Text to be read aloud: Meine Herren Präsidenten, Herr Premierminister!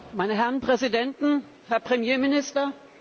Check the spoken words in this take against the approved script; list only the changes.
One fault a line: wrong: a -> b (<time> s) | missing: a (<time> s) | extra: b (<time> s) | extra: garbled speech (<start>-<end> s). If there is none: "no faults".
no faults